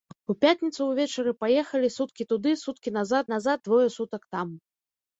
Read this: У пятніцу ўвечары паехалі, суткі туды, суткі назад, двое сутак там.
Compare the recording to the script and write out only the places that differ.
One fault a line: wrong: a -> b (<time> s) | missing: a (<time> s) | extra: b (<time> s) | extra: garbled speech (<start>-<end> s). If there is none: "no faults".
extra: назад (3.3 s)